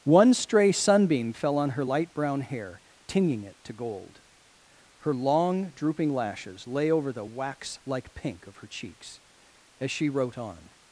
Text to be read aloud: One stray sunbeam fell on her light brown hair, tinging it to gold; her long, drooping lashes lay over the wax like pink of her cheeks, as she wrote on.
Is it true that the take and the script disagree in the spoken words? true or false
false